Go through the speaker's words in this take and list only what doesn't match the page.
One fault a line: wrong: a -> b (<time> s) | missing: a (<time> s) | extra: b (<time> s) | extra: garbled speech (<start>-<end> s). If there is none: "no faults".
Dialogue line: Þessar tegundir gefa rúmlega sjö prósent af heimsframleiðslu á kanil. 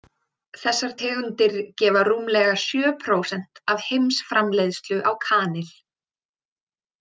no faults